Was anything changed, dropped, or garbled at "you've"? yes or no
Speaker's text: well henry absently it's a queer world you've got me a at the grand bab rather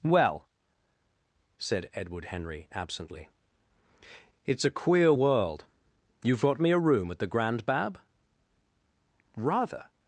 no